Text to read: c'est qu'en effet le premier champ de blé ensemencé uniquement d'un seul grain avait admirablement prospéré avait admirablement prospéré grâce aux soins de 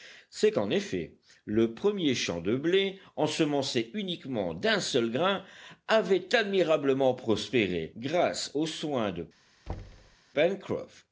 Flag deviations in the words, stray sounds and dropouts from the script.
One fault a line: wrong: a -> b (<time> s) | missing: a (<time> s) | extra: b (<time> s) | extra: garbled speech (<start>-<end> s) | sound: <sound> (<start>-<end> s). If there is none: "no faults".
missing: avait admirablement prospéré (7.9 s)
sound: thud (9.7-10.2 s)